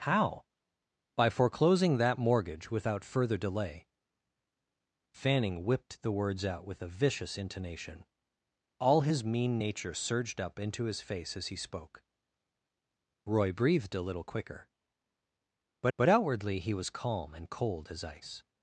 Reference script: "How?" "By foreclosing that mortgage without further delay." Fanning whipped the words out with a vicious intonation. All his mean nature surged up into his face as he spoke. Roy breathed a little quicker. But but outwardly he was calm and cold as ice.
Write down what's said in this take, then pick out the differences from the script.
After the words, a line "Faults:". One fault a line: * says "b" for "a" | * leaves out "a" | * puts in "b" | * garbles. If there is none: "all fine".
"How?" "By foreclosing that mortgage without further delay." Fanning whipped the words out with a vicious intonation. All his mean nature surged up into his face as he spoke. Roy breathed a little quicker. But but outwardly he was calm and cold as ice.
Faults:
all fine